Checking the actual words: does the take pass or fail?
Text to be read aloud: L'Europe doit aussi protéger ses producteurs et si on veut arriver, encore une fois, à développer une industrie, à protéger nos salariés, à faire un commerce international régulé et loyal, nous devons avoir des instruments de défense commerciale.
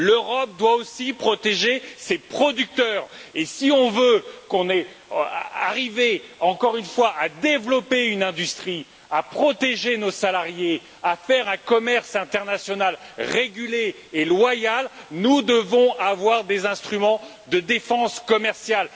pass